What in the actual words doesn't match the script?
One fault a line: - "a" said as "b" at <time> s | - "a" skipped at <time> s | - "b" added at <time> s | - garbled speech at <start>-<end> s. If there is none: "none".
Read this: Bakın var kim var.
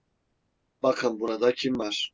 - "var" said as "burada" at 1.2 s